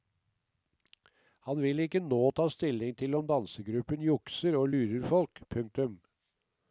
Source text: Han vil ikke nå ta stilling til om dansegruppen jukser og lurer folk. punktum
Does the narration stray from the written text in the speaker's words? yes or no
no